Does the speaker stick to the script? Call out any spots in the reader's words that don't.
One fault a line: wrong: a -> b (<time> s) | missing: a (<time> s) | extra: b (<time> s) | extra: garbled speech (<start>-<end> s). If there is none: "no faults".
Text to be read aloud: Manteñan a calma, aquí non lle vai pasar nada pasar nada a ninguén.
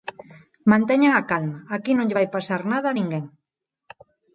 missing: pasar nada (2.9 s)